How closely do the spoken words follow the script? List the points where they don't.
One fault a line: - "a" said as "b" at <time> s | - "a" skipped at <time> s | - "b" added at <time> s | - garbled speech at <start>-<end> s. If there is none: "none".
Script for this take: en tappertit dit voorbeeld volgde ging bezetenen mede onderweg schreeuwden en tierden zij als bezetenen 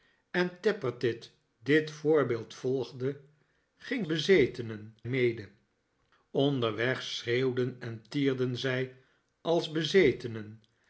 none